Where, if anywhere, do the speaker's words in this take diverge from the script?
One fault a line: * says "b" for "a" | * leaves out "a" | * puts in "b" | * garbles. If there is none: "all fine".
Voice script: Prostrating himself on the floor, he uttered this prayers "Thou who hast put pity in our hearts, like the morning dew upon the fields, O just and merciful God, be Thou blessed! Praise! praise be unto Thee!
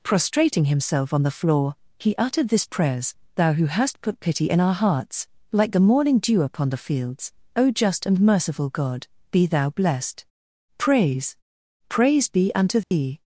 all fine